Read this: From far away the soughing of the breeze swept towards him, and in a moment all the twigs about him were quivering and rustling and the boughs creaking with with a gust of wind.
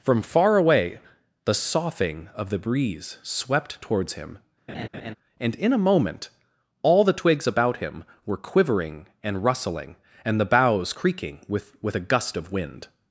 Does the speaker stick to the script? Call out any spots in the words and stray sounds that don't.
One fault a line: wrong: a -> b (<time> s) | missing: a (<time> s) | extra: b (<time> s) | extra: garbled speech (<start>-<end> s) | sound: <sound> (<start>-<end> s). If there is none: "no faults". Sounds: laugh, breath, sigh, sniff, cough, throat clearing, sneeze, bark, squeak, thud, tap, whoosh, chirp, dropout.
sound: laugh (4.7-5.1 s)